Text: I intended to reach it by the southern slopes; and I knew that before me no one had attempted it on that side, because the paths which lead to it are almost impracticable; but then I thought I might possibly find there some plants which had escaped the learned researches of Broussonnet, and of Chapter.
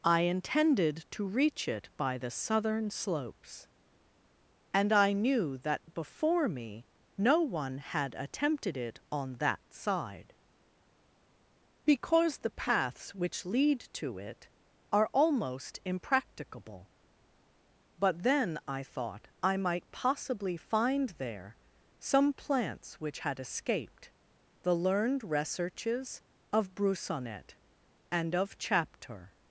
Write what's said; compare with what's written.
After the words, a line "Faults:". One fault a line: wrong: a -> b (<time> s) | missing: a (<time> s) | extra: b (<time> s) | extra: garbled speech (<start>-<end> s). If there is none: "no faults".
I intended to reach it by the southern slopes; and I knew that before me no one had attempted it on that side, because the paths which lead to it are almost impracticable; but then I thought I might possibly find there some plants which had escaped the learned researches of Broussonnet, and of Chapter.
Faults:
no faults